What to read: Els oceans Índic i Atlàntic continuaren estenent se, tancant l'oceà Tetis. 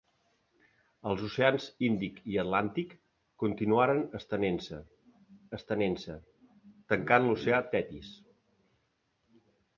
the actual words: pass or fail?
fail